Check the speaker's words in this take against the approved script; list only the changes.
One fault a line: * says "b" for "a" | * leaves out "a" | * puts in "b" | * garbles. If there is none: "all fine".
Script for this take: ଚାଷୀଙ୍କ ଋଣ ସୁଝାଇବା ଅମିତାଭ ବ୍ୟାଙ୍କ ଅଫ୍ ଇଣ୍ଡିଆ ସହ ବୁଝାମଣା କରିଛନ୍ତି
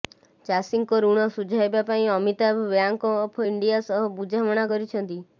* puts in "ପାଇଁ"